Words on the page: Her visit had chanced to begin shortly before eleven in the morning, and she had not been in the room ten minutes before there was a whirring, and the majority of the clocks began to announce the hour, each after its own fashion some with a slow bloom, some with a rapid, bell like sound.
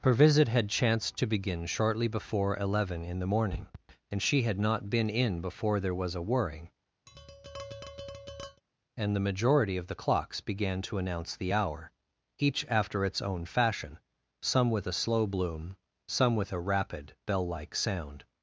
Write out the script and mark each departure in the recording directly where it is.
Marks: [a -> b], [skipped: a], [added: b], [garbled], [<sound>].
Her visit had chanced to begin shortly before eleven in the morning, and she had not been in [skipped: the room ten minutes] before there was a whirring, [tap] and the majority of the clocks began to announce the hour, each after its own fashion some with a slow bloom, some with a rapid, bell like sound.